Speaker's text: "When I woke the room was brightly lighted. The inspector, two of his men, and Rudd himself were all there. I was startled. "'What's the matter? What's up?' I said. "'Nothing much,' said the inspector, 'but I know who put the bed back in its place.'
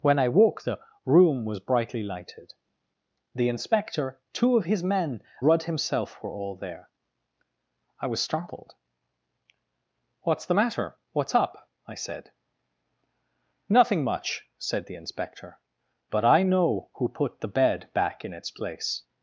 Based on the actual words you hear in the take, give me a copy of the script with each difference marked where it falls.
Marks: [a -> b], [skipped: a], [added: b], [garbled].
"When I woke the room was brightly lighted. The inspector, two of his men, [skipped: and] Rudd himself were all there. I was startled. "'What's the matter? What's up?' I said. "'Nothing much,' said the inspector, 'but I know who put the bed back in its place.'